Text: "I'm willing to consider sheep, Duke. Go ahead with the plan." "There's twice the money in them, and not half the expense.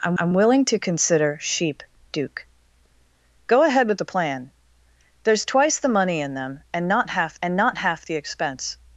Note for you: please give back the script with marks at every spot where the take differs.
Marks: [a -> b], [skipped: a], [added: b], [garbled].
"I'm [added: I'm] willing to consider sheep, Duke. Go ahead with the plan." "There's twice the money in them, and not half [added: and not half] the expense.